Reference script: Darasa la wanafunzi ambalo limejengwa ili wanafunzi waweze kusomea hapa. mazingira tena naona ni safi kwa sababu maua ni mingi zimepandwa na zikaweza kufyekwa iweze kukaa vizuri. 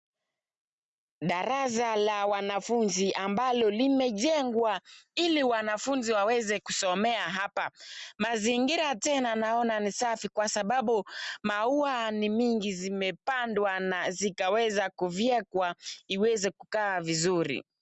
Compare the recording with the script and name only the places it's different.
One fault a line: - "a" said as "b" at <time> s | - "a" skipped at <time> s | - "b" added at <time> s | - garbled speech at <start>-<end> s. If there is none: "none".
none